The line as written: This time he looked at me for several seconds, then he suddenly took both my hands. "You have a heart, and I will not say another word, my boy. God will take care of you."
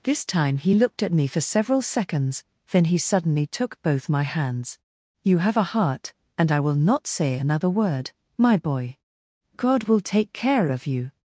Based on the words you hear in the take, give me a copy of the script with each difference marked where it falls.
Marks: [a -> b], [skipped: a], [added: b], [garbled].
This time he looked at me for several seconds, then he suddenly took both my hands. "You have a heart, and I will not say another word, my boy. God will take care of you."